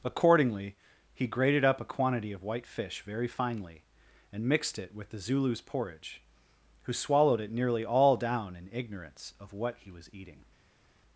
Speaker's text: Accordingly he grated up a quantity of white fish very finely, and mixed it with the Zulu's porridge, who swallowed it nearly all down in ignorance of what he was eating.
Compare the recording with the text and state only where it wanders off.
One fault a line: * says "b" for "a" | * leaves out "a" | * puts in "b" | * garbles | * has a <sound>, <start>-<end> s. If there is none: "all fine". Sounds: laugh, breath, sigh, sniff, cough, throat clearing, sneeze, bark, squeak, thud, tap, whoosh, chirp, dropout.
all fine